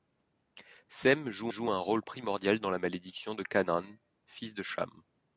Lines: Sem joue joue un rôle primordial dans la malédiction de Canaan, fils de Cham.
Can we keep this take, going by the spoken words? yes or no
yes